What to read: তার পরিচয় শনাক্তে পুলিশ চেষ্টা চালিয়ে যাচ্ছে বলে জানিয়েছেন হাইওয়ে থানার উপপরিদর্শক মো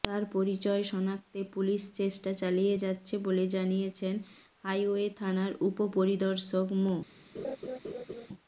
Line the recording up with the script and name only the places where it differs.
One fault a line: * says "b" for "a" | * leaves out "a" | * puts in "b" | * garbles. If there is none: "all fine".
all fine